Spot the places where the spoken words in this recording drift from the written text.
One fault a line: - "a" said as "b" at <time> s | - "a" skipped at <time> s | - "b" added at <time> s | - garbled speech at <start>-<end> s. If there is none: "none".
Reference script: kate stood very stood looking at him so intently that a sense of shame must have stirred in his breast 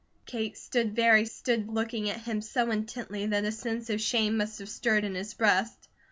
none